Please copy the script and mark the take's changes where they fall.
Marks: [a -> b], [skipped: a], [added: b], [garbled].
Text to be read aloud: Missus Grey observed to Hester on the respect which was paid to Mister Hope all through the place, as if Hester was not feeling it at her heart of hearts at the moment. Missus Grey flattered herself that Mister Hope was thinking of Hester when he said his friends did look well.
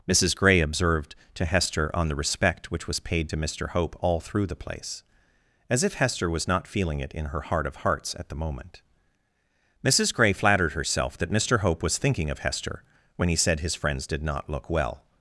Missus Grey observed to Hester on the respect which was paid to Mister Hope all through the place, as if Hester was not feeling it [at -> in] her heart of hearts at the moment. Missus Grey flattered herself that Mister Hope was thinking of Hester when he said his friends did [added: not] look well.